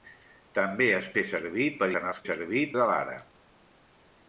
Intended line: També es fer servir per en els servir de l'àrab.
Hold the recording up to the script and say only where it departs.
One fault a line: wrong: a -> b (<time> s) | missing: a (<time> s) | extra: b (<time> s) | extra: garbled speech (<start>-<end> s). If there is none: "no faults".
no faults